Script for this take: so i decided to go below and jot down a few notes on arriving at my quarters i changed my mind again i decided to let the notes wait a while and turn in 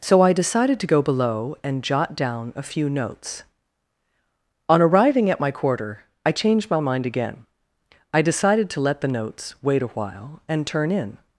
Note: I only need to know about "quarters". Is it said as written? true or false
false